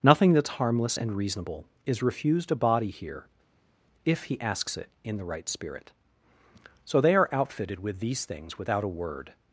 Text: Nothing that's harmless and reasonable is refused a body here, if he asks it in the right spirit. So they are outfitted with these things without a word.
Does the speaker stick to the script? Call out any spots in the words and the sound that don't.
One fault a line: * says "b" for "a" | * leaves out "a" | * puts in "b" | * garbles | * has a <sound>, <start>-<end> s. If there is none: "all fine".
all fine